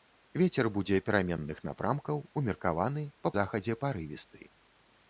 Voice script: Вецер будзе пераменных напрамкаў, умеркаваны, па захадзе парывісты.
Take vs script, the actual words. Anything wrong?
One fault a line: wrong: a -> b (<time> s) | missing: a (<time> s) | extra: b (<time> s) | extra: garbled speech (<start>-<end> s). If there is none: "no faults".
no faults